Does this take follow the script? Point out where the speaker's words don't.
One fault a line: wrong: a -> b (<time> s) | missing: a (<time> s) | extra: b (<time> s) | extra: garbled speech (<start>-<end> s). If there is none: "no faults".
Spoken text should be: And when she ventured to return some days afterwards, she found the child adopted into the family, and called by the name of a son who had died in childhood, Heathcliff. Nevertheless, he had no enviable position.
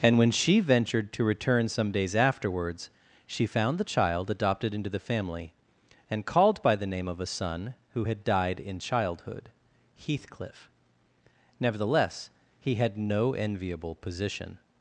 no faults